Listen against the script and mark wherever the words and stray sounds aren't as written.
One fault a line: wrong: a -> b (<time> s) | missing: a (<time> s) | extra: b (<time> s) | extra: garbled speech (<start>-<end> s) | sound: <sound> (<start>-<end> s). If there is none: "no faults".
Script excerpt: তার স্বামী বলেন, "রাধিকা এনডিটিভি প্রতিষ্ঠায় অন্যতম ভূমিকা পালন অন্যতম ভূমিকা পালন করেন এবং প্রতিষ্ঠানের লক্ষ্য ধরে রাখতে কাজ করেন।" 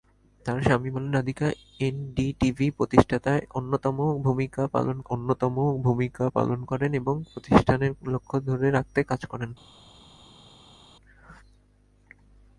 no faults